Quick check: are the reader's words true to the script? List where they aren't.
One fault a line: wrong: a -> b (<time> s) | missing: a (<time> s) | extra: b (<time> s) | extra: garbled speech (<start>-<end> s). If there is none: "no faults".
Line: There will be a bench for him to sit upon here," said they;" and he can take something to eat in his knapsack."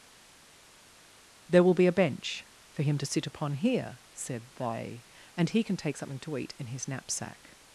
no faults